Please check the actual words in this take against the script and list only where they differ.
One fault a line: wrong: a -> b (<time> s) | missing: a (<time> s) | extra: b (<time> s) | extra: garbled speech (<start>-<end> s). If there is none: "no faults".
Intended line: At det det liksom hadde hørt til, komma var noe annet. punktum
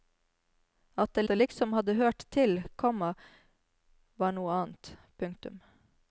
no faults